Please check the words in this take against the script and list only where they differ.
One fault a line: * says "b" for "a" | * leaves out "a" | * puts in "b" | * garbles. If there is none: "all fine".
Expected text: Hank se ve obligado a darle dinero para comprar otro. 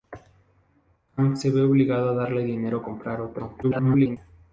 * leaves out "para"
* garbles